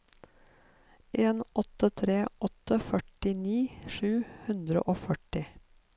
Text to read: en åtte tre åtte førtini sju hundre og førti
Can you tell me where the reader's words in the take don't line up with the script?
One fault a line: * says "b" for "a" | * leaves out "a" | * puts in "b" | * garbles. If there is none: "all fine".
all fine